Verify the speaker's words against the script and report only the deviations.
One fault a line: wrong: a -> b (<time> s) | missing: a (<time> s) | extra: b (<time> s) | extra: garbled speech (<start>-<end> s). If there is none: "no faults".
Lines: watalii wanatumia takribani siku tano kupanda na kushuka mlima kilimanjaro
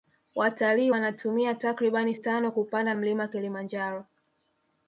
missing: siku (2.1 s)
missing: na kushuka (2.9 s)